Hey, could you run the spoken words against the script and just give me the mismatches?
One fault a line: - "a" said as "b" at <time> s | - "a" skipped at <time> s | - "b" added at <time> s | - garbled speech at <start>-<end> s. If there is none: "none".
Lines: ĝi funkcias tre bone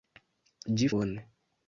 - "funkcias tre" skipped at 0.9 s